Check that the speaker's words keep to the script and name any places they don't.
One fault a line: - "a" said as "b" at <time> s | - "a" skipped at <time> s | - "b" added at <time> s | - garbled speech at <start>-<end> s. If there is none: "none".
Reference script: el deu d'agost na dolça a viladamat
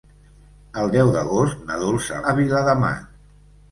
none